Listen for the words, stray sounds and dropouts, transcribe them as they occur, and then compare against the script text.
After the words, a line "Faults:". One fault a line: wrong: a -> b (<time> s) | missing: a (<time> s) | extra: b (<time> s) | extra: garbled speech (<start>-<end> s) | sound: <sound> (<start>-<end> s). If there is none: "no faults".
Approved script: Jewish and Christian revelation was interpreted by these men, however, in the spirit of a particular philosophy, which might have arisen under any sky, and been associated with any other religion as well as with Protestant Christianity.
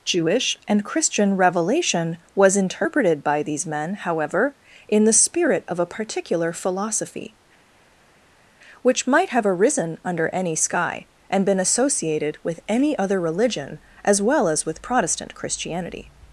Jewish and Christian revelation was interpreted by these men, however, in the spirit of a particular philosophy, which might have arisen under any sky, and been associated with any other religion as well as with Protestant Christianity.
Faults:
no faults